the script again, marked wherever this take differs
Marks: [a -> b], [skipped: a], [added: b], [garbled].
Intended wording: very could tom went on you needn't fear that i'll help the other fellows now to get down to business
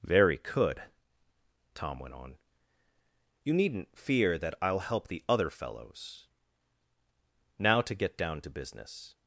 very could tom went on you needn't fear that i'll help the other fellows now to get down to business